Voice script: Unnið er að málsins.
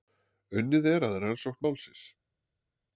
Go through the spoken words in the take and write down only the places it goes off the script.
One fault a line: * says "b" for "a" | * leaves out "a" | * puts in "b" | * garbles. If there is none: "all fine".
* puts in "rannsókn"